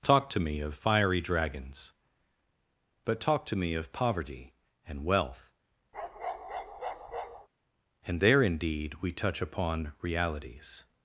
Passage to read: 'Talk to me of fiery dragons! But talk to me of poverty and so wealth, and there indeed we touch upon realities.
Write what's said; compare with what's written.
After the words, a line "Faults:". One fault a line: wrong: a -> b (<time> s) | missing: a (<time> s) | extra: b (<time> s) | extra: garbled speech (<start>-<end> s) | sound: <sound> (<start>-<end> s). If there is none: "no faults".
'Talk to me of fiery dragons! But talk to me of poverty and wealth, and there indeed we touch upon realities.
Faults:
missing: so (5.0 s)
sound: bark (5.9-7.5 s)